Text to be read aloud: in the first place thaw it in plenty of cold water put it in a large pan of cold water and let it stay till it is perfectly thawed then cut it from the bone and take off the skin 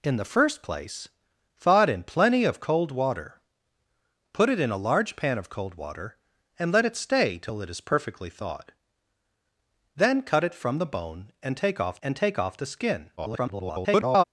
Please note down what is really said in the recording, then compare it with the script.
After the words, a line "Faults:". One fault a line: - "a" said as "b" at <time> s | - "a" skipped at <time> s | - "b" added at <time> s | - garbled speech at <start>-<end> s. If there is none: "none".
in the first place thaw it in plenty of cold water put it in a large pan of cold water and let it stay till it is perfectly thawed then cut it from the bone and take off and take off the skin [garbled]
Faults:
- "and take off" added at 12.0 s
- garbled speech at 13.2-14.2 s